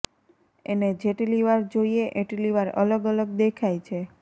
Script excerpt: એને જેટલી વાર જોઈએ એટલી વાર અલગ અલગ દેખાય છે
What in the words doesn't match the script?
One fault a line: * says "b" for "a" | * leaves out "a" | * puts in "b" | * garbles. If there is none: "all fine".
all fine